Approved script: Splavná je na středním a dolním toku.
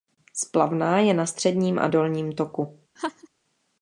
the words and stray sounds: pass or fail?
fail